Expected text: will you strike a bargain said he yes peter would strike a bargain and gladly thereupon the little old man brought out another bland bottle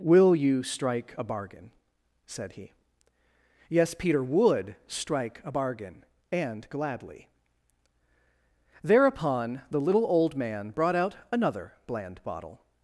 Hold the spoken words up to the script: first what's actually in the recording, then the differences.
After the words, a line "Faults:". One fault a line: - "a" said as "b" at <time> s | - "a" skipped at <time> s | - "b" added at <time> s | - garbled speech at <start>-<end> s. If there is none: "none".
will you strike a bargain said he yes peter would strike a bargain and gladly thereupon the little old man brought out another bland bottle
Faults:
none